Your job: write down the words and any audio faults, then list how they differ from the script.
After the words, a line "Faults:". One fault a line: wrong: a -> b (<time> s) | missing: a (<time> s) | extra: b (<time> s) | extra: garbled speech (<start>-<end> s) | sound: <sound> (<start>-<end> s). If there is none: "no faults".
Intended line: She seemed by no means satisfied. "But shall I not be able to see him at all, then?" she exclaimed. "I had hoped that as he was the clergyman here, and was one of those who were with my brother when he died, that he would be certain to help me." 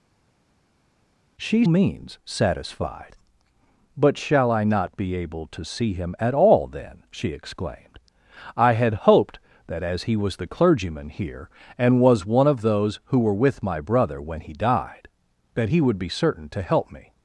She means satisfied. "But shall I not be able to see him at all, then?" she exclaimed. "I had hoped that as he was the clergyman here, and was one of those who were with my brother when he died, that he would be certain to help me."
Faults:
missing: seemed by no (1.6 s)